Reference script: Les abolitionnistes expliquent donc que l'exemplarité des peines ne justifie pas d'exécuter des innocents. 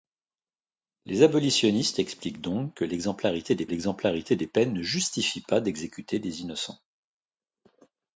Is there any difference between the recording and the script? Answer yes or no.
yes